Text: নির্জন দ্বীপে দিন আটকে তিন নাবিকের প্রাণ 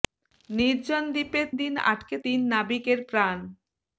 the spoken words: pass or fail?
pass